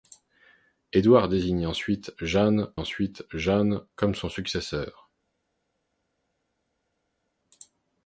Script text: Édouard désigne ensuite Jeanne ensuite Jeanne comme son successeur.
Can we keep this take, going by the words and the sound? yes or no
yes